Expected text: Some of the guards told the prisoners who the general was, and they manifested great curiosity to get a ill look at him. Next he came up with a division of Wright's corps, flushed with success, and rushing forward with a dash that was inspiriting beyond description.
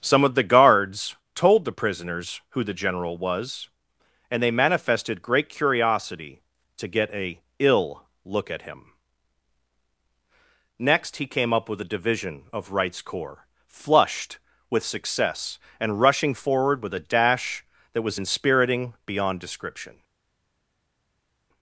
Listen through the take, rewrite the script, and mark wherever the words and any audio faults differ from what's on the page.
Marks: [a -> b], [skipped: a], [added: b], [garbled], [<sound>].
Some of the guards told the prisoners who the general was, and they manifested great curiosity to get a ill look at him. Next he came up with a division of Wright's corps, flushed with success, and rushing forward with a dash that was inspiriting beyond description.